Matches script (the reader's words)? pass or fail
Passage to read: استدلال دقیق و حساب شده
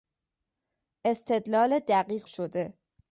fail